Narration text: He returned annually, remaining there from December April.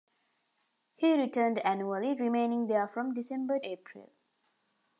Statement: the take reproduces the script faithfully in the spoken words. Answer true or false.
true